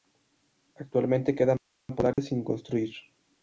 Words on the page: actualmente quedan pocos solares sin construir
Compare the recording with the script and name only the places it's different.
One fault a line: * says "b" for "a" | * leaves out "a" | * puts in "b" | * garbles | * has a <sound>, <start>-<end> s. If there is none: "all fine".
* has a dropout, 2.1-2.2 s